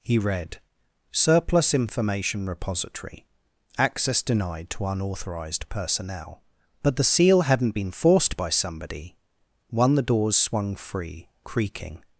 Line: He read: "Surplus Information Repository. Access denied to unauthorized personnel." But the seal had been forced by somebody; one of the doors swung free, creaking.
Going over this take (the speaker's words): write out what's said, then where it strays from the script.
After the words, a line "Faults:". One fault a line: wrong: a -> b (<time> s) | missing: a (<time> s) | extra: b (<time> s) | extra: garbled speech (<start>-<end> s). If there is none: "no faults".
He read: "Surplus Information Repository. Access denied to unauthorized personnel." But the seal hadn't been forced by somebody; one the doors swung free, creaking.
Faults:
wrong: had -> hadn't (7.4 s)
missing: of (10.0 s)